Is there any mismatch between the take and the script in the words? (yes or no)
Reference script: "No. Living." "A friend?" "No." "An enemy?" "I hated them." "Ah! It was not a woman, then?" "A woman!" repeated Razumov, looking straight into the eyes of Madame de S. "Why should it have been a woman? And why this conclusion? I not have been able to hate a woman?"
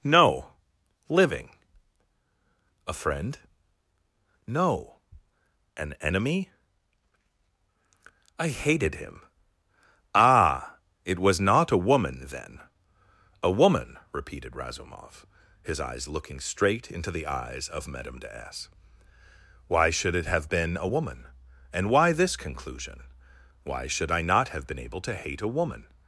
yes